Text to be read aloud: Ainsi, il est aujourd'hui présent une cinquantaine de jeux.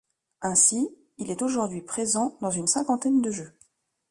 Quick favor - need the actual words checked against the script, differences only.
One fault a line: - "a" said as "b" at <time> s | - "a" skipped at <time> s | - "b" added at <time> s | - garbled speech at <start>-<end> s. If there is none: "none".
- "dans" added at 2.4 s